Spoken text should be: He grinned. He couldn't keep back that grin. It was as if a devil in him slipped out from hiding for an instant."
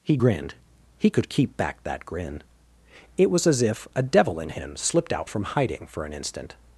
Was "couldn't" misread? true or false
true